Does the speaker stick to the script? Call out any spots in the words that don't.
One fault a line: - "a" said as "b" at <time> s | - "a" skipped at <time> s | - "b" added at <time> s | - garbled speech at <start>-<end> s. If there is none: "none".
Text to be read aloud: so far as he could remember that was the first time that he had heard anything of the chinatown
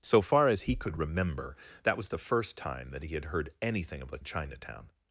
none